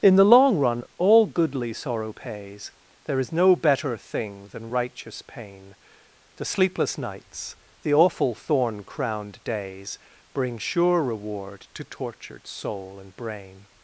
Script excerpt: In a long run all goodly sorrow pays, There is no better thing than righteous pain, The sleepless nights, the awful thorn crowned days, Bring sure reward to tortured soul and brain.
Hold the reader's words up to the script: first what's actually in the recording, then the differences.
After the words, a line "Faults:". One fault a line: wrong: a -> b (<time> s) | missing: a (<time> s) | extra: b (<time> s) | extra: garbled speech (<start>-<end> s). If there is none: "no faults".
In the long run all goodly sorrow pays, There is no better thing than righteous pain, The sleepless nights, the awful thorn crowned days, Bring sure reward to tortured soul and brain.
Faults:
wrong: a -> the (0.1 s)